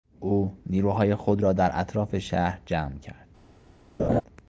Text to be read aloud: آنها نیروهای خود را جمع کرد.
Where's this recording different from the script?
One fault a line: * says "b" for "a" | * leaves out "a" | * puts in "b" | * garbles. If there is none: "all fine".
* says "او" for "آنها"
* puts in "در اطراف شهر"